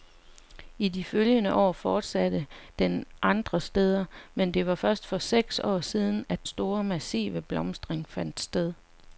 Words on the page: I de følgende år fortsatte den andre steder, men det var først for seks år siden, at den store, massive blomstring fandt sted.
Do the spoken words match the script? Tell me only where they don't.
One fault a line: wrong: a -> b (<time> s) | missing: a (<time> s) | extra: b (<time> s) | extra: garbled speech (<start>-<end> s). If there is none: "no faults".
missing: den (6.5 s)